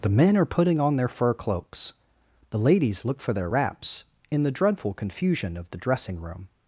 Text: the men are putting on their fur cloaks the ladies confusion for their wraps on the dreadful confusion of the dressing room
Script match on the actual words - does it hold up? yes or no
no